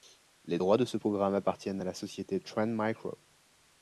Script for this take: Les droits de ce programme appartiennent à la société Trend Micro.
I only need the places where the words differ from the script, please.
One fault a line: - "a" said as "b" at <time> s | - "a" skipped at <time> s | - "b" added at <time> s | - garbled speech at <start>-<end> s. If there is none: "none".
none